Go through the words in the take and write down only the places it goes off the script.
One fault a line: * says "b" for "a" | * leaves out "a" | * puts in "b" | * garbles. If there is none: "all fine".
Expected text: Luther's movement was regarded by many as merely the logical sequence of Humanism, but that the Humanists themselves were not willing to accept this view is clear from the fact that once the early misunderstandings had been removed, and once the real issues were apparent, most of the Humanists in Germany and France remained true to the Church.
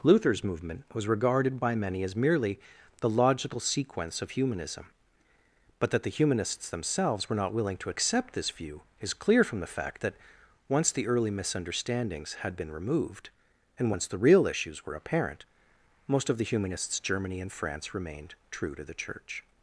* leaves out "in"